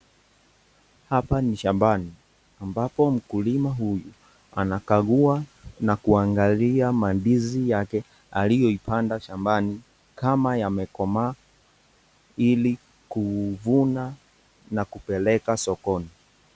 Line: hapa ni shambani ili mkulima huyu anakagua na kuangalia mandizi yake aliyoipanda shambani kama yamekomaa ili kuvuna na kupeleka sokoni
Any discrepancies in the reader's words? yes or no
yes